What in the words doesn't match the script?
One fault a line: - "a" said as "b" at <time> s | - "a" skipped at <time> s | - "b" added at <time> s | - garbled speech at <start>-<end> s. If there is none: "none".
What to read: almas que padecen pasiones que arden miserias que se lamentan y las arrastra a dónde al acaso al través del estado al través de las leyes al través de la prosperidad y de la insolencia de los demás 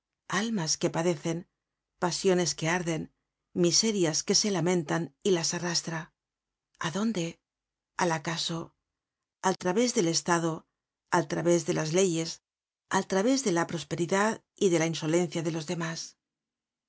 none